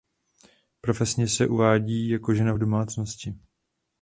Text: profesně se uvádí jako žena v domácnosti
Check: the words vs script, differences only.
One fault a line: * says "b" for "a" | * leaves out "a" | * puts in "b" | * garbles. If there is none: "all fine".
all fine